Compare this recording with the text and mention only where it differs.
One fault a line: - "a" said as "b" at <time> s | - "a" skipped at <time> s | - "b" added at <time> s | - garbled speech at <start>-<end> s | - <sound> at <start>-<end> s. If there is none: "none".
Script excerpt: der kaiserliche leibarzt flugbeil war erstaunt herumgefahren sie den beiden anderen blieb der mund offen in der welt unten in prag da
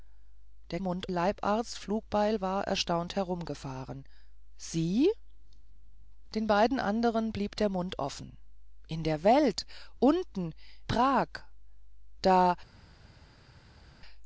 - "kaiserliche" said as "mund" at 0.8 s
- "in" skipped at 10.5 s